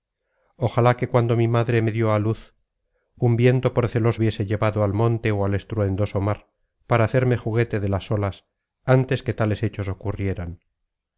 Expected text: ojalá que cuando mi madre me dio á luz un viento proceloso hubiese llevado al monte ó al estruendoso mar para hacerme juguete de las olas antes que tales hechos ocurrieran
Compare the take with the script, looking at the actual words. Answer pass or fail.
pass